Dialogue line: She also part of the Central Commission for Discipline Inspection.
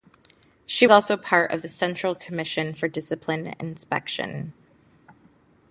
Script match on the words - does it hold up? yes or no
yes